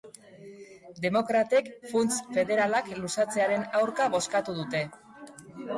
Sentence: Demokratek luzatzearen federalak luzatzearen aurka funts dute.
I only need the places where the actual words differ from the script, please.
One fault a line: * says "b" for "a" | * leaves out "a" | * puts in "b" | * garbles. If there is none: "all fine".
* says "funts" for "luzatzearen"
* says "bozkatu" for "funts"